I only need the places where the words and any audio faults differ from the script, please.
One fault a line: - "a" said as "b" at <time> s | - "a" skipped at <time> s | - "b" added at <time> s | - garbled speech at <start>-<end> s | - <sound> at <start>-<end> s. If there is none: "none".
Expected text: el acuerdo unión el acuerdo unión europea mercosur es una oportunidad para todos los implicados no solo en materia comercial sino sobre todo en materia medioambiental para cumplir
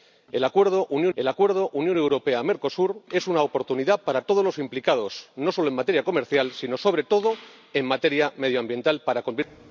none